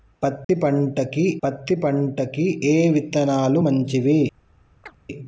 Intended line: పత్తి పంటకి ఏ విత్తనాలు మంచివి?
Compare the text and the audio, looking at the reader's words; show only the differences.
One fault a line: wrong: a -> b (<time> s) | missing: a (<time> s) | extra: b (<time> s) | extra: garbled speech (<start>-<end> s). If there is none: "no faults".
extra: పత్తి పంటకి (1.4 s)